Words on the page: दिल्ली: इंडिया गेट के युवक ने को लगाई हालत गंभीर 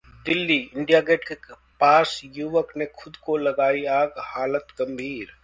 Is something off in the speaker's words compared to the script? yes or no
yes